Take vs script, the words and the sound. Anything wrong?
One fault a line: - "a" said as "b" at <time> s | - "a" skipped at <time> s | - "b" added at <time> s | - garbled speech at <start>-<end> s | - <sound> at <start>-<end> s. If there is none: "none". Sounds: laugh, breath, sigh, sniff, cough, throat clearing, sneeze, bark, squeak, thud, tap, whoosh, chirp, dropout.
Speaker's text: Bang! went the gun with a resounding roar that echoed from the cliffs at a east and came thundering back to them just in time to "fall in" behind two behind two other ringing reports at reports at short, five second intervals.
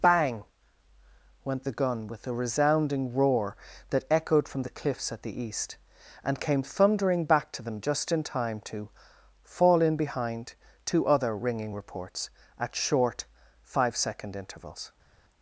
- "a" said as "the" at 5.2 s
- "behind two" skipped at 11.0 s
- "reports at" skipped at 12.7 s